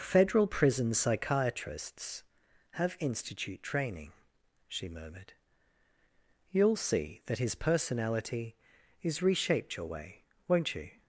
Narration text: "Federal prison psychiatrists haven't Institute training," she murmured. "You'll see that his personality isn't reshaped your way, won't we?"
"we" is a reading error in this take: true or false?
true